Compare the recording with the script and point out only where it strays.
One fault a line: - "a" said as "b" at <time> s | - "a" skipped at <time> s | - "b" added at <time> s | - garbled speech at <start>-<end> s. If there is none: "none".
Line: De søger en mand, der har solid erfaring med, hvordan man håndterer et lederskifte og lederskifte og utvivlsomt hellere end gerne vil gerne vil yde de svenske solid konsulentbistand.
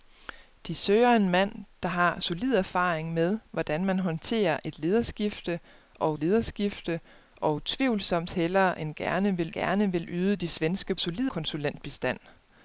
none